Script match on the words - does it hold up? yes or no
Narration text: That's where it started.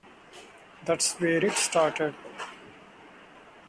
yes